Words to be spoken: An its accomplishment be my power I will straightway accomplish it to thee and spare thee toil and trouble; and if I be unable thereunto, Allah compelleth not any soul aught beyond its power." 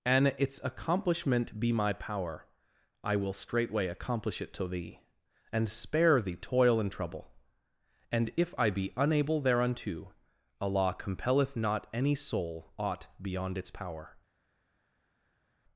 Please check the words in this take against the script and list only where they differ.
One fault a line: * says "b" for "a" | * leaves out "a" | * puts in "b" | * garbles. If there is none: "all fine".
all fine